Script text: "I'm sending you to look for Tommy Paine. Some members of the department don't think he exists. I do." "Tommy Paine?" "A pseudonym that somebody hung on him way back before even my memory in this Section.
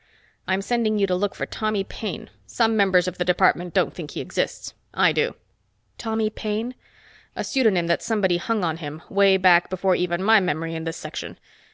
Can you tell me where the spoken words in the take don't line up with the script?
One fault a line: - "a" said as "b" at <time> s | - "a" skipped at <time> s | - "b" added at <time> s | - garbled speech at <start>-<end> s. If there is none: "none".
none